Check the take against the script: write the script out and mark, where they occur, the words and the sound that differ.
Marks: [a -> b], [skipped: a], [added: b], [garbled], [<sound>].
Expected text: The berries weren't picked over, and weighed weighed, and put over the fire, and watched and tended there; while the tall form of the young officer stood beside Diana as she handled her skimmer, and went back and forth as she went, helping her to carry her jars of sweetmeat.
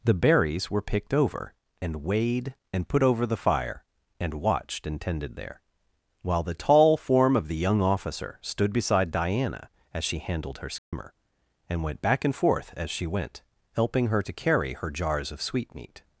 The berries [weren't -> were] picked over, and weighed [skipped: weighed,] and put over the fire, and watched and tended there; while the tall form of the young officer stood beside Diana as she handled her skimmer, [dropout] and went back and forth as she went, helping her to carry her jars of sweetmeat.